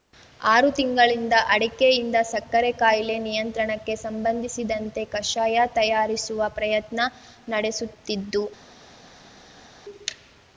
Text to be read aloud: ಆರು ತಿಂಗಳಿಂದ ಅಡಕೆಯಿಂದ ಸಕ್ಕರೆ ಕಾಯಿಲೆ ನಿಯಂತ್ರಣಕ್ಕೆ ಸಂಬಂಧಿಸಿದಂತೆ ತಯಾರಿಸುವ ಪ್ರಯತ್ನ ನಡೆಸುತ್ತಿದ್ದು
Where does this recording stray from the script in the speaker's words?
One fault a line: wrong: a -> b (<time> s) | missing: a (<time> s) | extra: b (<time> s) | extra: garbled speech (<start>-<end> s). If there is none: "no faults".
extra: ಕಷಾಯ (5.1 s)